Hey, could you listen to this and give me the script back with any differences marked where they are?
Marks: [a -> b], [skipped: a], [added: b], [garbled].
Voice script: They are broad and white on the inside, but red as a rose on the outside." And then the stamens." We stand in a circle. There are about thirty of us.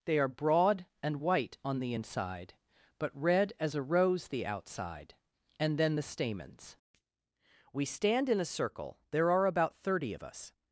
They are broad and white on the inside, but red as a rose [skipped: on] the outside." And then the stamens." We stand in a circle. There are about thirty of us.